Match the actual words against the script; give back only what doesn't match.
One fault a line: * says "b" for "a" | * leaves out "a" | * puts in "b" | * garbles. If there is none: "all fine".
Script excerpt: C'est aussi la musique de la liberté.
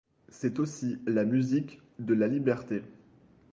all fine